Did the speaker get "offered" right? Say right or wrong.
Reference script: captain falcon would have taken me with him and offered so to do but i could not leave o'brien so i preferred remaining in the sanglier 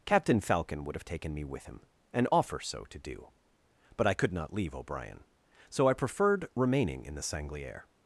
wrong